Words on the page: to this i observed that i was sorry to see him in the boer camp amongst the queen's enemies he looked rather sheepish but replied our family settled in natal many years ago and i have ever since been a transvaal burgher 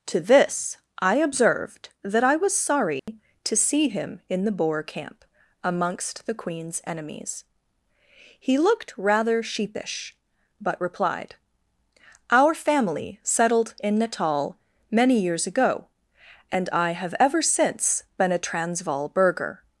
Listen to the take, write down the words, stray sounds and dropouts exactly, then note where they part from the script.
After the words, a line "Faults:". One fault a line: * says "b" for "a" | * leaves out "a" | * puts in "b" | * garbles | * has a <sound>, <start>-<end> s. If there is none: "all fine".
to this i observed that i was sorry to see him in the boer camp amongst the queen's enemies he looked rather sheepish but replied our family settled in natal many years ago and i have ever since been a transvaal burgher
Faults:
* has a dropout, 3.0-3.1 s